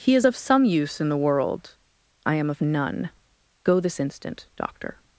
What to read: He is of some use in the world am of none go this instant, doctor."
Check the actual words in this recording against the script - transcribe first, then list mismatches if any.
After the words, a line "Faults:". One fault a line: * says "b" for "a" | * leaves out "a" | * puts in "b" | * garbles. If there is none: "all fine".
He is of some use in the world I am of none go this instant, doctor."
Faults:
* puts in "I"